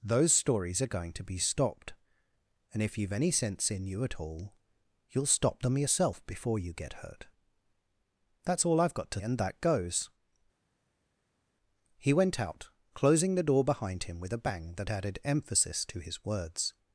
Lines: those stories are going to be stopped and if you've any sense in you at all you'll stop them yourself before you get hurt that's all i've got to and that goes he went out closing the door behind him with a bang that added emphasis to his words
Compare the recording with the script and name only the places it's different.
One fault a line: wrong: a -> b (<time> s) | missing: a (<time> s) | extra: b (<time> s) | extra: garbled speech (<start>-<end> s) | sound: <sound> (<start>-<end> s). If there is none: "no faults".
no faults